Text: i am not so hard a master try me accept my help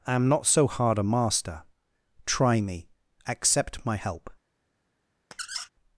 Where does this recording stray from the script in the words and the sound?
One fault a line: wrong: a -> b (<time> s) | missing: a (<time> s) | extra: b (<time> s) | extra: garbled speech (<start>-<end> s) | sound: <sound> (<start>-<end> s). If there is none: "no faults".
sound: squeak (5.3-5.7 s)